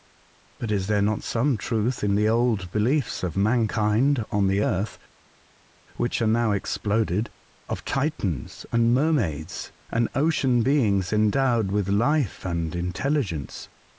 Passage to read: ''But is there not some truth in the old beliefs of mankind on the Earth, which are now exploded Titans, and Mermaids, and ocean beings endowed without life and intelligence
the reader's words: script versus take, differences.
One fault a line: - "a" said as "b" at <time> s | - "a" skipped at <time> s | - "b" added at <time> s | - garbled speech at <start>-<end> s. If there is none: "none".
- "of" added at 7.7 s
- "without" said as "with" at 11.7 s